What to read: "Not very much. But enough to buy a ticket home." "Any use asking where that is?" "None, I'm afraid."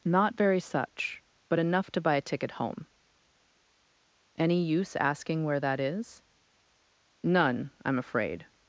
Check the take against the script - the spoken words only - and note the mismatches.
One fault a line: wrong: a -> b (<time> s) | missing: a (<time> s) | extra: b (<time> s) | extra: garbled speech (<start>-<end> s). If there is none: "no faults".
wrong: much -> such (0.6 s)